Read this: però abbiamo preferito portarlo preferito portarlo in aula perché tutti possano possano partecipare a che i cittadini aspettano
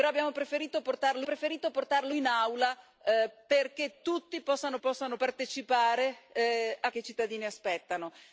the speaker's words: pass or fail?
pass